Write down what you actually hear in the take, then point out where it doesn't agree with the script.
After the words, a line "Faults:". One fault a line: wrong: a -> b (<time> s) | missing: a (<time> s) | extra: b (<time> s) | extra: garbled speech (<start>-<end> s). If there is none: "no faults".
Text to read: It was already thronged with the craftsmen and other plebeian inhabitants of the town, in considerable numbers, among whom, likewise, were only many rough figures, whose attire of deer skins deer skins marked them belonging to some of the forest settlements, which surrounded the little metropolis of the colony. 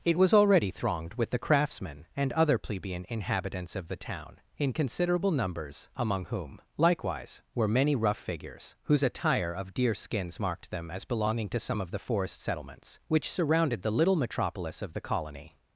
It was already thronged with the craftsmen and other plebeian inhabitants of the town, in considerable numbers, among whom, likewise, were many rough figures, whose attire of deer skins marked them as belonging to some of the forest settlements, which surrounded the little metropolis of the colony.
Faults:
missing: only (7.7 s)
missing: deer skins (10.4 s)
extra: as (10.9 s)